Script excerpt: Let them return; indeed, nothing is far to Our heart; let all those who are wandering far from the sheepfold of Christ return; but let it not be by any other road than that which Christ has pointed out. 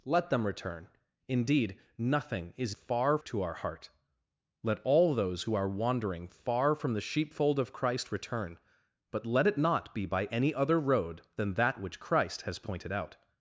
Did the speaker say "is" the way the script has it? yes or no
yes